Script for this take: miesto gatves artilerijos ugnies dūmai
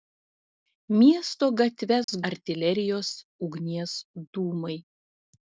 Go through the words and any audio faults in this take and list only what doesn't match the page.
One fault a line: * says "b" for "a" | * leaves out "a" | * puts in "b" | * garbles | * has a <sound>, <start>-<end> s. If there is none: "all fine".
* has a dropout, 2.0-2.1 s